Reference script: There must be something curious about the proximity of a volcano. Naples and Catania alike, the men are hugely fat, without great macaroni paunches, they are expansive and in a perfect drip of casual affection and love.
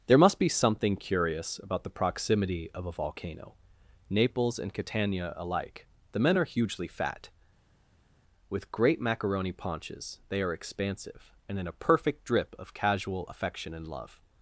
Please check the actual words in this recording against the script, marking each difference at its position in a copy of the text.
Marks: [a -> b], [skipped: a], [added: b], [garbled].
There must be something curious about the proximity of a volcano. Naples and Catania alike, the men are hugely fat, [without -> with] great macaroni paunches, they are expansive and in a perfect drip of casual affection and love.